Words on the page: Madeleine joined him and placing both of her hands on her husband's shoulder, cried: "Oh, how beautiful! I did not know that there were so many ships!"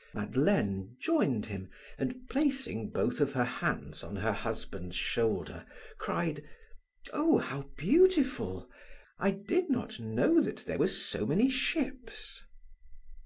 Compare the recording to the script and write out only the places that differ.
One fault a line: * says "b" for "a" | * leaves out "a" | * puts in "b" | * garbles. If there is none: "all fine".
all fine